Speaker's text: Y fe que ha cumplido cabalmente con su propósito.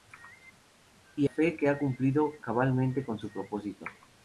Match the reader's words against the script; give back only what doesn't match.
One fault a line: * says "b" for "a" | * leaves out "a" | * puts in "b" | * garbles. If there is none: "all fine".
all fine